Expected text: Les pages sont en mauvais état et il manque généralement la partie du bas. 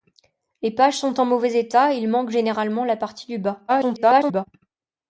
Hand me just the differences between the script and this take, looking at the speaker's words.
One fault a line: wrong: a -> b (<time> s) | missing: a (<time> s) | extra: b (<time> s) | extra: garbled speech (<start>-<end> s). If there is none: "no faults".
extra: garbled speech (3.7-4.5 s)